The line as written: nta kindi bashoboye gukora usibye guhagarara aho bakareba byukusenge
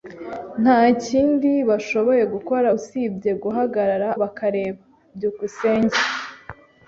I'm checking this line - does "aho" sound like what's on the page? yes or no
no